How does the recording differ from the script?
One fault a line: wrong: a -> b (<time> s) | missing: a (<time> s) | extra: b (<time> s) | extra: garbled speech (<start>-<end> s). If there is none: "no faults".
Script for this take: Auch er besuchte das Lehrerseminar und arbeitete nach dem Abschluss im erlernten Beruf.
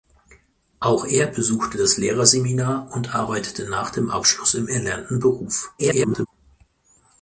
extra: garbled speech (5.8-6.3 s)